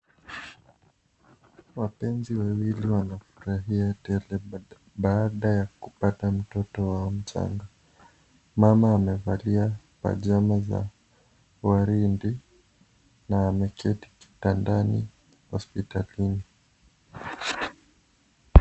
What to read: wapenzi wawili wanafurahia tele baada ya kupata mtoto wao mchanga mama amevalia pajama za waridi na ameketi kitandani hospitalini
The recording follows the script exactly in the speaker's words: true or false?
true